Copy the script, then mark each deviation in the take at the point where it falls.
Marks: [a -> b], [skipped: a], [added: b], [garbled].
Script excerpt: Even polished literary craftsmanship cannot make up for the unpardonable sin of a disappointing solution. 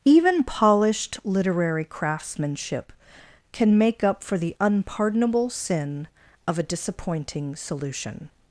Even polished literary craftsmanship [cannot -> can] make up for the unpardonable sin of a disappointing solution.